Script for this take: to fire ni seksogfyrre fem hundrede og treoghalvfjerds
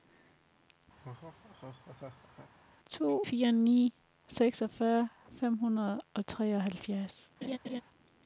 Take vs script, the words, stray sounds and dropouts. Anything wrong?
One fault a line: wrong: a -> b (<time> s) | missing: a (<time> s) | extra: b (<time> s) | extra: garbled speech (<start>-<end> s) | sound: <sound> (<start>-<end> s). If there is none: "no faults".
sound: laugh (1.0-2.5 s)
sound: laugh (7.4-7.8 s)